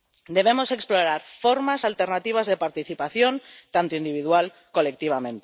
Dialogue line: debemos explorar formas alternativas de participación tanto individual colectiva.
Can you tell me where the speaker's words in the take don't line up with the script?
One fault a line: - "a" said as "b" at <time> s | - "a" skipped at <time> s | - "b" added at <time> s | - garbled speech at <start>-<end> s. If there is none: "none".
none